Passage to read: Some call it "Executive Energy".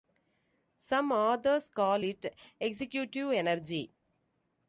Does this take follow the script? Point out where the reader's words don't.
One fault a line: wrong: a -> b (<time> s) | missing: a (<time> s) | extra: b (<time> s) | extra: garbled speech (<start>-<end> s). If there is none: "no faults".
extra: authors (1.1 s)